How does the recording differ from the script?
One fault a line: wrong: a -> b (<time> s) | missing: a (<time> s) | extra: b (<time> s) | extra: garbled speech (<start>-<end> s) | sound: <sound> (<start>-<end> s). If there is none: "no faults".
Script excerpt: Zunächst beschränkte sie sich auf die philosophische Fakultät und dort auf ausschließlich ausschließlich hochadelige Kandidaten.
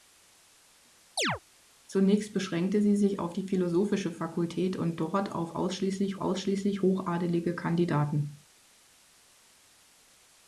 sound: chirp (1.2-1.4 s)